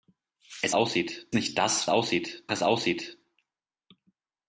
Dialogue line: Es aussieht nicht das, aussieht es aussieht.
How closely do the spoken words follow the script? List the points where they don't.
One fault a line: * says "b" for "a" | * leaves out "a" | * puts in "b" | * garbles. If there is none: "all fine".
all fine